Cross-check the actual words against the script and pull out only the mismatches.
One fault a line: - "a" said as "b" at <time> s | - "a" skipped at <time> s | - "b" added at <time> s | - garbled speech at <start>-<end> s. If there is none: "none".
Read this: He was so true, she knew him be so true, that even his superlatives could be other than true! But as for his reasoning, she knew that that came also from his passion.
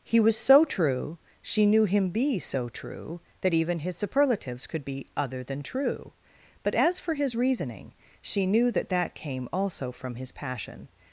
none